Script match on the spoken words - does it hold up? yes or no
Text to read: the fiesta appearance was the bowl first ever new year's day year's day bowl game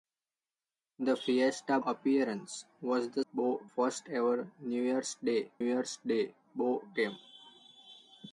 yes